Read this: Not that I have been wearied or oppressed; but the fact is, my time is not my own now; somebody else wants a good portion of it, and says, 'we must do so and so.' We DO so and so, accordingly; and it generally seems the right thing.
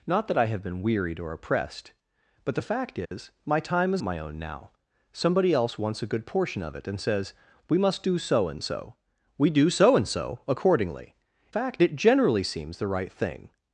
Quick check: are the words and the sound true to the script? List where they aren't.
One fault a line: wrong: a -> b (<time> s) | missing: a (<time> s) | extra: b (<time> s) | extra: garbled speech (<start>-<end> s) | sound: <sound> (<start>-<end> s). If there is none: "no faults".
sound: dropout (3.1-3.1 s)
missing: not (4.0 s)
wrong: and -> fact (11.5 s)